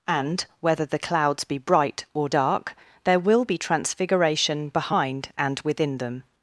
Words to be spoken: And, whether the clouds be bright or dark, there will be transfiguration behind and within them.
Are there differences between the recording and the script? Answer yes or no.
no